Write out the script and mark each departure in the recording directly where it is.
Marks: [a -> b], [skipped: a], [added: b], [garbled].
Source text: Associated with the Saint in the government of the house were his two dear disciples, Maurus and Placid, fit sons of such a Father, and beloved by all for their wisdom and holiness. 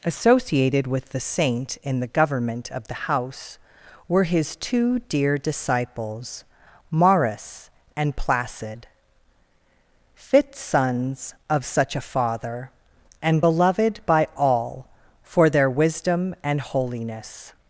Associated with the Saint in the government of the house were his two dear disciples, Maurus and Placid, fit sons of such a Father, and beloved by all for their wisdom and holiness.